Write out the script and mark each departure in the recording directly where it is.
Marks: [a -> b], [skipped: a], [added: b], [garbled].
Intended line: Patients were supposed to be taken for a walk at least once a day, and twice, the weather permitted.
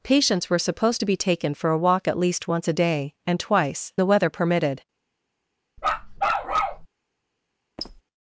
Patients were supposed to be taken for a walk at least once a day, and twice, the weather permitted.